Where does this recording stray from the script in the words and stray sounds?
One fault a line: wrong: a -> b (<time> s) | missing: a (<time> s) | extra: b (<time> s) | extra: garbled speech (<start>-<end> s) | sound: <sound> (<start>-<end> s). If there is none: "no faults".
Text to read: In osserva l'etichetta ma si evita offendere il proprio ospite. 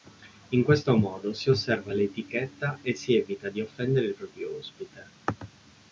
extra: questo modo si (0.6 s)
wrong: ma -> e (2.8 s)
extra: di (3.5 s)